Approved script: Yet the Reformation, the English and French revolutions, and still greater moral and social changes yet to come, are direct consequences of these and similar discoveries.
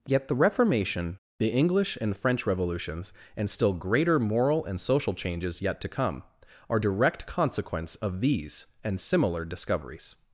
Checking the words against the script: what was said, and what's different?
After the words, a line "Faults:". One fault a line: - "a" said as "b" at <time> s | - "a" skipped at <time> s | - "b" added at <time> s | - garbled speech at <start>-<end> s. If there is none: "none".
Yet the Reformation, the English and French revolutions, and still greater moral and social changes yet to come, are direct consequence of these and similar discoveries.
Faults:
- "consequences" said as "consequence" at 7.3 s